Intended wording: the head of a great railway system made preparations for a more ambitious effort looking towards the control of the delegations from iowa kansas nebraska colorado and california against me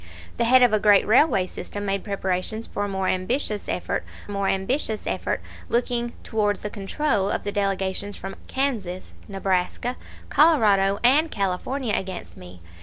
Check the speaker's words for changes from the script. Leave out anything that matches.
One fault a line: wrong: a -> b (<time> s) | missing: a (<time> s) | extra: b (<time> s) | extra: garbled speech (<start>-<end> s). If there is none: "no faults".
extra: more ambitious effort (4.3 s)
missing: iowa (8.4 s)